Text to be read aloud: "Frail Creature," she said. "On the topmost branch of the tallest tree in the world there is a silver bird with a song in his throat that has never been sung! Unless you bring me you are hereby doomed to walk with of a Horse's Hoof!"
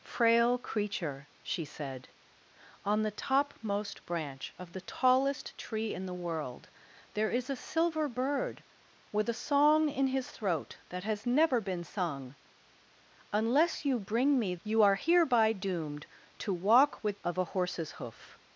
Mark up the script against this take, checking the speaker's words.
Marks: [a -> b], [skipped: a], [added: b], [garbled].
"Frail Creature," she said. "On the topmost branch of the tallest tree in the world there is a silver bird with a song in his throat that has never been sung! Unless you bring me you are hereby doomed to walk with of a Horse's Hoof!"